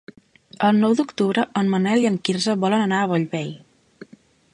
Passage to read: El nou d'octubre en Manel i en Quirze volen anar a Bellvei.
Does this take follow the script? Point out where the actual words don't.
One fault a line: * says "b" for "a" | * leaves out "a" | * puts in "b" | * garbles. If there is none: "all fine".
all fine